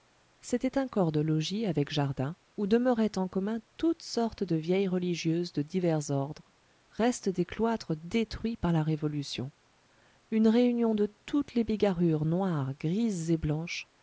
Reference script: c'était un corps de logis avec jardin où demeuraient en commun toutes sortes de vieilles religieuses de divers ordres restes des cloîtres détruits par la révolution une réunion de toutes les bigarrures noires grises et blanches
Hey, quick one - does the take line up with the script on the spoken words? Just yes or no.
yes